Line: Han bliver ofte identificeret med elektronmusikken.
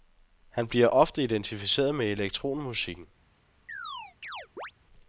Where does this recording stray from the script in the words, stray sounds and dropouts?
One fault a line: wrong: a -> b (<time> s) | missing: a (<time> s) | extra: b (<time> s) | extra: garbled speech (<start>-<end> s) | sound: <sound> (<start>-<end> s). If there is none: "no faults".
sound: chirp (3.7-4.7 s)